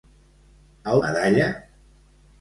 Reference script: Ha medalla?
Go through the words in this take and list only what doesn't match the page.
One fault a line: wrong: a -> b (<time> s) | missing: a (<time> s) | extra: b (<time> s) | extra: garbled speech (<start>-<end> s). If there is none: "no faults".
no faults